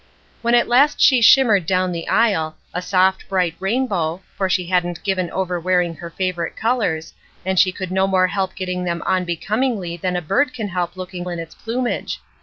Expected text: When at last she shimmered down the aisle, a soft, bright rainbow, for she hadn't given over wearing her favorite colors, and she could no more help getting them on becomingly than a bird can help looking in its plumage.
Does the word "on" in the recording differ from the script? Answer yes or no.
no